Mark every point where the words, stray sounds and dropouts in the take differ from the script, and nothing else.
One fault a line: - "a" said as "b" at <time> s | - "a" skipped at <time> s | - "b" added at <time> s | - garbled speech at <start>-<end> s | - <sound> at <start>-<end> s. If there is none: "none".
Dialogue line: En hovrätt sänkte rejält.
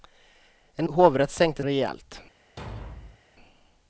- thud at 2.6-3.2 s